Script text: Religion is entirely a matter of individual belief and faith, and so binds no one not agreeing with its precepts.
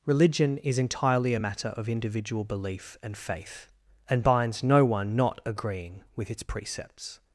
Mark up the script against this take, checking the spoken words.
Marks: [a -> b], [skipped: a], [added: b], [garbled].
Religion is entirely a matter of individual belief and faith, and [skipped: so] binds no one not agreeing with its precepts.